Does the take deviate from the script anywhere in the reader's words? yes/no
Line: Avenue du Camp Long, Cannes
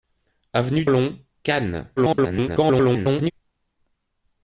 yes